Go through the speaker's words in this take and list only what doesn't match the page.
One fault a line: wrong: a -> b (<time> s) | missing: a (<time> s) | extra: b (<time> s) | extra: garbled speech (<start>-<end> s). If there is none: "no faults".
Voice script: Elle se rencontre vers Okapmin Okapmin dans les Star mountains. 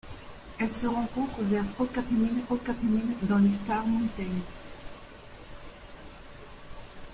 no faults